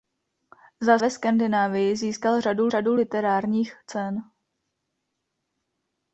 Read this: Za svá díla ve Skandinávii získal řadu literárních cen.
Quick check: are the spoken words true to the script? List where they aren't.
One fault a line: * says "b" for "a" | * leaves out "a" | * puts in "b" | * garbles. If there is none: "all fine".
* leaves out "svá díla"
* puts in "řadu"